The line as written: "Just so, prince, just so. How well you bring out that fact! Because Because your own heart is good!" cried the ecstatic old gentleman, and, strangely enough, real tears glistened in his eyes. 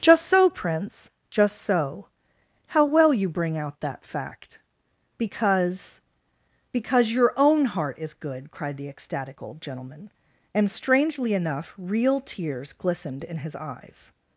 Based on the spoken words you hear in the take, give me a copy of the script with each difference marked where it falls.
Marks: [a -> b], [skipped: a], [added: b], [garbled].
"Just so, prince, just so. How well you bring out that fact! Because Because your own heart is good!" cried the ecstatic old gentleman, and, strangely enough, real tears glistened in his eyes.